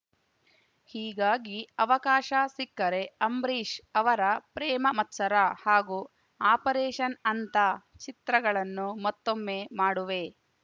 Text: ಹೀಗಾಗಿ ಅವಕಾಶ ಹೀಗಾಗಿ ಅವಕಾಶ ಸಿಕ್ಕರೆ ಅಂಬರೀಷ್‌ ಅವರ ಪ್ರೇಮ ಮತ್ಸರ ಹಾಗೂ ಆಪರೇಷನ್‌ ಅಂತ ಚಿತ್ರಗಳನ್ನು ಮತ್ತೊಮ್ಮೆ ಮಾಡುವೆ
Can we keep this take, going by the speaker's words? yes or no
no